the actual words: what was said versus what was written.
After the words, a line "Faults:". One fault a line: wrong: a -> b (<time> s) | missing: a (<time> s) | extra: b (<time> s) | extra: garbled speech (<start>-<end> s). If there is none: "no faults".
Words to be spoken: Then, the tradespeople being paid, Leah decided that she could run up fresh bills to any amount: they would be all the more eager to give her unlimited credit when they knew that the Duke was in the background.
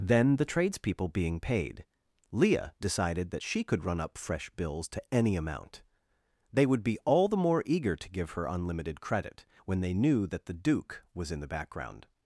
Then, the tradespeople being paid, Leah decided that she could run up fresh bills to any amount: they would be all the more eager to give her unlimited credit when they knew that the Duke was in the background.
Faults:
no faults